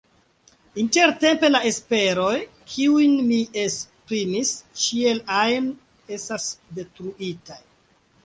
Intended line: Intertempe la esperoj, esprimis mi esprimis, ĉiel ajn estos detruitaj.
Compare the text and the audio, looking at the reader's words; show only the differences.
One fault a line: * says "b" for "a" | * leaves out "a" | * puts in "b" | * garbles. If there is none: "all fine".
* says "kiujn" for "esprimis"
* says "estas" for "estos"